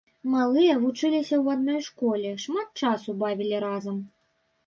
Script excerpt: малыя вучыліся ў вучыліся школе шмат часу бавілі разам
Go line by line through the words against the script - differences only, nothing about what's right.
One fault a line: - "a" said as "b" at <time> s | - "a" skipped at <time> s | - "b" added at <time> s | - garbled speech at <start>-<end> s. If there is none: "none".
- "вучыліся" said as "адной" at 1.6 s